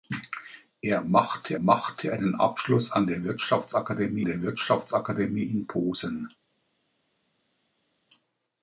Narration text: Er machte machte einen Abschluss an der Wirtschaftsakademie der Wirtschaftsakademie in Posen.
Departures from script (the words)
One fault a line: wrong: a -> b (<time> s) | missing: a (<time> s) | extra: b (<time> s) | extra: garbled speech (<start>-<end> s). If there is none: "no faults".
no faults